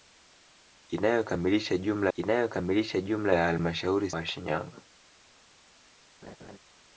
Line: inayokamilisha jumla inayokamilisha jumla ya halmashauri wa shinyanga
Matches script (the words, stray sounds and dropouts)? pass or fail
fail